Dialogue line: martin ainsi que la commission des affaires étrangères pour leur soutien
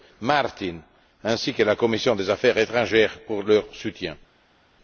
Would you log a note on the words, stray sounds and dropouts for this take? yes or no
no